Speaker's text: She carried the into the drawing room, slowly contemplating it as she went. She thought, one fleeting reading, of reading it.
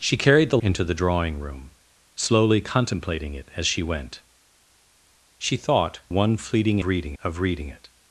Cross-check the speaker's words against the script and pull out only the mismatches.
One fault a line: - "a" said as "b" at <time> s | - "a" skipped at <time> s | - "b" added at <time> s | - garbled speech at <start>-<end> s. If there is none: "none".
none